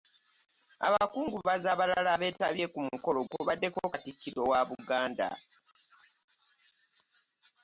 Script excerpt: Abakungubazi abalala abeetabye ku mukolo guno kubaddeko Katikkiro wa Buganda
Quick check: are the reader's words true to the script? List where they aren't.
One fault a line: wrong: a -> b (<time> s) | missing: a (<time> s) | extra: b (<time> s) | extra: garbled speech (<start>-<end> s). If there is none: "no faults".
missing: guno (3.2 s)